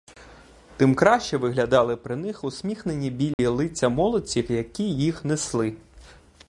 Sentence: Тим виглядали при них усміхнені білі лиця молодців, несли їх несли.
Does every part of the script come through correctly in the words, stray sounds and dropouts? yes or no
no